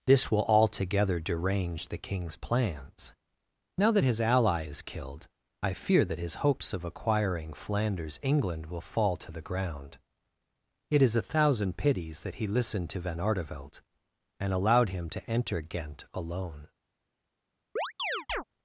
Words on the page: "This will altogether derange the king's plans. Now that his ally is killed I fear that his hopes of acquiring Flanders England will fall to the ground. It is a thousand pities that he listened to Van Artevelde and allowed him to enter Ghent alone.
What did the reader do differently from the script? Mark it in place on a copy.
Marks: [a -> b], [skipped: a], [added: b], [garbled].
"This will altogether derange the king's plans. Now that his ally is killed I fear that his hopes of acquiring Flanders England will fall to the ground. It is a thousand pities that he listened to Van Artevelde and allowed him to enter Ghent alone.